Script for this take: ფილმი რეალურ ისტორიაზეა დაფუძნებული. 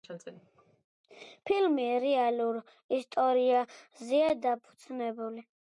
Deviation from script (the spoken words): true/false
false